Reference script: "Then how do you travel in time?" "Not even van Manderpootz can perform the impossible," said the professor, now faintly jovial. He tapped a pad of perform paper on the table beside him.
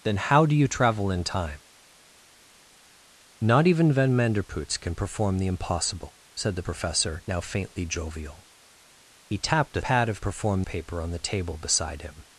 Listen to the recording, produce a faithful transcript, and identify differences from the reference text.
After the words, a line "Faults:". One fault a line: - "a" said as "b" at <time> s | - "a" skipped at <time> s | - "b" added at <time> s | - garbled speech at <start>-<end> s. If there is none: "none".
"Then how do you travel in time?" "Not even van Manderpootz can perform the impossible," said the professor, now faintly jovial. He tapped a pad of perform paper on the table beside him.
Faults:
none